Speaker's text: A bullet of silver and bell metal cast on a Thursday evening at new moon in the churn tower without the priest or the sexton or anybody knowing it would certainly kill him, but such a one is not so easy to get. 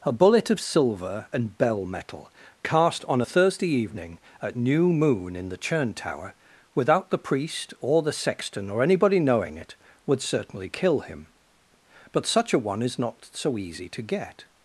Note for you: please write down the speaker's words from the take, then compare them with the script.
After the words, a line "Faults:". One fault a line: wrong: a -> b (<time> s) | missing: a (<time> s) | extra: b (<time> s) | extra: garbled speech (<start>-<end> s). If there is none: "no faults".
A bullet of silver and bell metal cast on a Thursday evening at new moon in the churn tower without the priest or the sexton or anybody knowing it would certainly kill him, but such a one is not so easy to get.
Faults:
no faults